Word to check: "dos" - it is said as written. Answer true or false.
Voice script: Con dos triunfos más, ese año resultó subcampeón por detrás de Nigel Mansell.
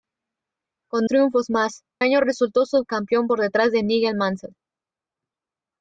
false